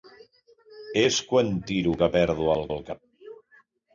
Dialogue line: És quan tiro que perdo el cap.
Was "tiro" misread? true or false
false